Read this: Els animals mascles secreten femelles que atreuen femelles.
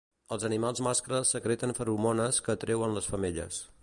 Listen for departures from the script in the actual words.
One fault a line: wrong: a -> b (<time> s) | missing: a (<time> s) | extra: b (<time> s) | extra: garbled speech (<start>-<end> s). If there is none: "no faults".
wrong: femelles -> feromones (1.8 s)
extra: les (3.0 s)